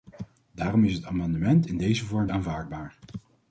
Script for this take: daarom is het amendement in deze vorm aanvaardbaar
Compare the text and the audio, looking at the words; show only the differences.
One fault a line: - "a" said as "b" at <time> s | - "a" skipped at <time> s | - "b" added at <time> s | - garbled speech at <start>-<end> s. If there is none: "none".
none